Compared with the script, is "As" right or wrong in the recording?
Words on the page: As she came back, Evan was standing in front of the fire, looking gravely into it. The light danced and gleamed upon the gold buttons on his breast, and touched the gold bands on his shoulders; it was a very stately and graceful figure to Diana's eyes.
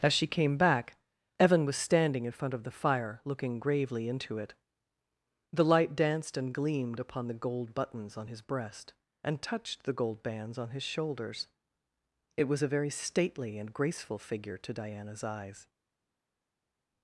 right